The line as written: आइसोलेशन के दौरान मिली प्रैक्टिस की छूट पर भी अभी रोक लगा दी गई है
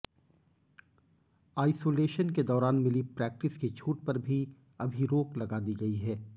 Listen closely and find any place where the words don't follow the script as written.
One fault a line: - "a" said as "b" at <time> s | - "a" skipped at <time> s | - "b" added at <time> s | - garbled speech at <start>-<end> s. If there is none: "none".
none